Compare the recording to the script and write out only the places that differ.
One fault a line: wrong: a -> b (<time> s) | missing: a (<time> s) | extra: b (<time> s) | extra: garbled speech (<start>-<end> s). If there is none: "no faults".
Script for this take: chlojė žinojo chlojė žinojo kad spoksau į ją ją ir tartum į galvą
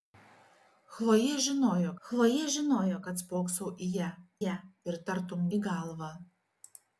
no faults